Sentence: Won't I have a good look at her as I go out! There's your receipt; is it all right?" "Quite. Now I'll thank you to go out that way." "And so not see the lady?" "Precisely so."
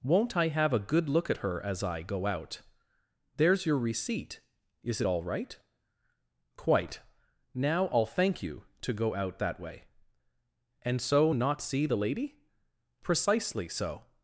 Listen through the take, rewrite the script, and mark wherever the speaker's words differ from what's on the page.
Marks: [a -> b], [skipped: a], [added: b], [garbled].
Won't I have a good look at her as I go out! There's your receipt; is it all right?" "Quite. Now I'll thank you to go out that way." "And so not see the lady?" "Precisely so."